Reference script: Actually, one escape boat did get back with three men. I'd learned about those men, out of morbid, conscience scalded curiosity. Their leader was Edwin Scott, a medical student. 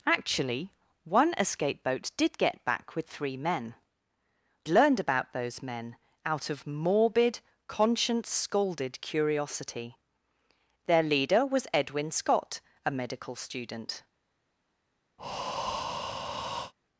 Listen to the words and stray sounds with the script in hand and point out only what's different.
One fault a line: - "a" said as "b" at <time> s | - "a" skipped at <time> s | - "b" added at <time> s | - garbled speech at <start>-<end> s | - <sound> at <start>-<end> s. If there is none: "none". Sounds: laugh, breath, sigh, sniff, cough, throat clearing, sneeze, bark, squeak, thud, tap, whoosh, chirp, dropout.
- "I'd" skipped at 3.8 s
- breath at 15.2-16.7 s